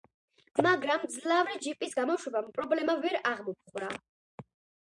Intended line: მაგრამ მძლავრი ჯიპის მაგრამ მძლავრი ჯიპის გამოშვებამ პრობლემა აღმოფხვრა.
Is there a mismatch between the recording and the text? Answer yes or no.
yes